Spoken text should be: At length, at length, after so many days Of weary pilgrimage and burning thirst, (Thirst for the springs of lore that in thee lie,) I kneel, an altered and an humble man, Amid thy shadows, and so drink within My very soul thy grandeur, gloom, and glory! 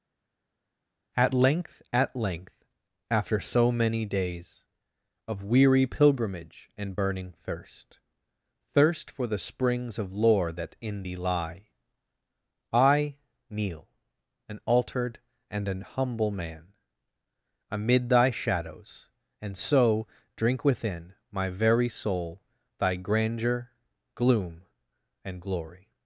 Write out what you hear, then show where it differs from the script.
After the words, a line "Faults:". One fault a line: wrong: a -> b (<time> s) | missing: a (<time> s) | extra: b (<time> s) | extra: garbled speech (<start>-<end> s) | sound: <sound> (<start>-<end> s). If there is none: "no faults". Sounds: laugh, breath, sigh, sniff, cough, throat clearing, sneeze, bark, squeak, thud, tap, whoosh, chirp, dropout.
At length, at length, after so many days Of weary pilgrimage and burning thirst, (Thirst for the springs of lore that in thee lie,) I kneel, an altered and an humble man, Amid thy shadows, and so drink within My very soul thy grandeur, gloom, and glory!
Faults:
no faults